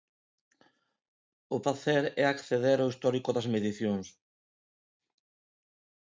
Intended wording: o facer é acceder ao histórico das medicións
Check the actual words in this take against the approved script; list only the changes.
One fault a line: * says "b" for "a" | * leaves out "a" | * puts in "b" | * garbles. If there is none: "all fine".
all fine